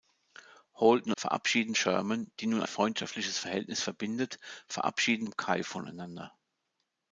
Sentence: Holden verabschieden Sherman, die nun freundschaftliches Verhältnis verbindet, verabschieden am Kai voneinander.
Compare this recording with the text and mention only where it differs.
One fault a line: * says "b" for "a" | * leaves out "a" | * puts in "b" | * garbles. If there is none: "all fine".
all fine